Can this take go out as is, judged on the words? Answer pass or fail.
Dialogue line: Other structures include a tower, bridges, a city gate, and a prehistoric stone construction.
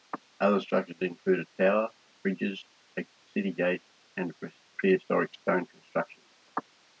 pass